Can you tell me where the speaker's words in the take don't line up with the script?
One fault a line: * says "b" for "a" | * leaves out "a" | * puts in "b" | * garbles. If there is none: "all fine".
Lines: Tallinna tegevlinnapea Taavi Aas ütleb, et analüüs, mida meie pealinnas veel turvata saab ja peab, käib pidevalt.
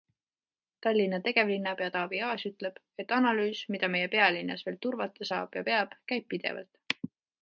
all fine